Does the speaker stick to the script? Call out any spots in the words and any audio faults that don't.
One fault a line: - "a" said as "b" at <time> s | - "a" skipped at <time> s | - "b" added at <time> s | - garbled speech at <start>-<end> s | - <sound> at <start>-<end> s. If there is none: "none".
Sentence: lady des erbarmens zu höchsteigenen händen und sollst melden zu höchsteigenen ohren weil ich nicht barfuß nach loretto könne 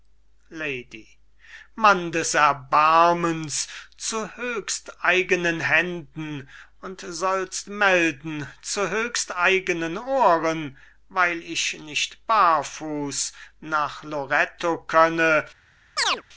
- "mann" added at 1.8 s
- chirp at 16.0-16.2 s